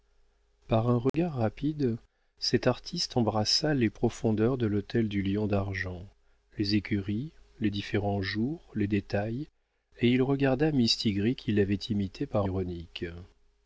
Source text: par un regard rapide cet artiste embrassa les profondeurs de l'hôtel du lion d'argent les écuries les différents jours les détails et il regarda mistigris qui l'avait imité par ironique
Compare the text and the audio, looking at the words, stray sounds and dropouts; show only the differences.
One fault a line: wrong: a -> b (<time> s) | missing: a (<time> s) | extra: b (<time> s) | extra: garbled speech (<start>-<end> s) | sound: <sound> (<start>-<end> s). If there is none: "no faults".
sound: dropout (1.1-1.1 s)